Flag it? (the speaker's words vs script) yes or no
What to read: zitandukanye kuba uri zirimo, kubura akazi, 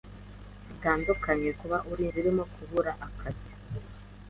no